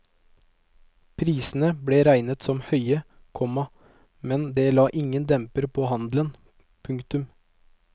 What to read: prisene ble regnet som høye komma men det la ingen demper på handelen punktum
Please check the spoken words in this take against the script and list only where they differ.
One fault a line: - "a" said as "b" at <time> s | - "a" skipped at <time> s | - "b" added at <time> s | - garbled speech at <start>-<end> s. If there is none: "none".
none